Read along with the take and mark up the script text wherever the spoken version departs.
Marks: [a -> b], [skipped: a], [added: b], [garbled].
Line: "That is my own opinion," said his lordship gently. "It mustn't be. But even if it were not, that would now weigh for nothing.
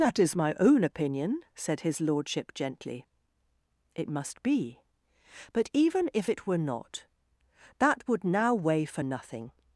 "That is my own opinion," said his lordship gently. "It [mustn't -> must] be. But even if it were not, that would now weigh for nothing.